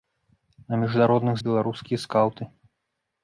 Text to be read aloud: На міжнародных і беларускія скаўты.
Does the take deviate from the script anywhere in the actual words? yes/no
no